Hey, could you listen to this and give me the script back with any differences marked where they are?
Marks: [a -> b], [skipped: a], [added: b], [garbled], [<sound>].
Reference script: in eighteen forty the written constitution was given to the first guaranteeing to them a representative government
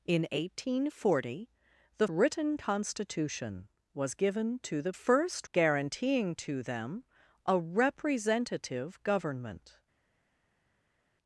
in eighteen forty the written constitution was given to the first guaranteeing to them a representative government